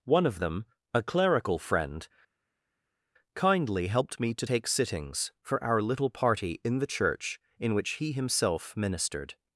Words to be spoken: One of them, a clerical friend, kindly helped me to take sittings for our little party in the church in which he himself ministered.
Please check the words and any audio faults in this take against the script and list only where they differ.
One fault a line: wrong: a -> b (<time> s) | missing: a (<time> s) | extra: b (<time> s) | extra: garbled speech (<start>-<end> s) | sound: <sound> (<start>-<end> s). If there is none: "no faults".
no faults